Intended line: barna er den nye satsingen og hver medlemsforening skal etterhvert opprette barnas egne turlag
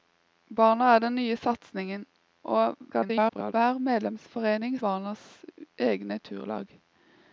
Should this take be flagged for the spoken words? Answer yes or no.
yes